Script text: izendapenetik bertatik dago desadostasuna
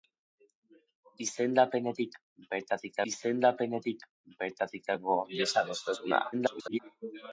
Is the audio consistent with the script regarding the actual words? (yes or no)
no